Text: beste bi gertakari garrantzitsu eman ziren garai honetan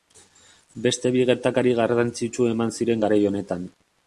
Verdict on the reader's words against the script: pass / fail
pass